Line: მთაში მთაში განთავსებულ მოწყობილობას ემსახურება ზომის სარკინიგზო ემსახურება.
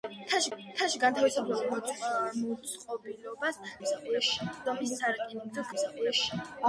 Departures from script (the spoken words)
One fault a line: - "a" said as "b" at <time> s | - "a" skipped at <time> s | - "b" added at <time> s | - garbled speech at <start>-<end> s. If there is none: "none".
none